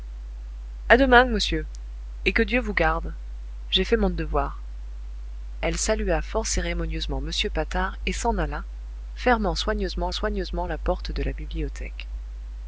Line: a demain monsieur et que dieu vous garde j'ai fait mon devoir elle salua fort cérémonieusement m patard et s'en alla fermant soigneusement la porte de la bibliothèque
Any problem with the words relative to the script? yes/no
yes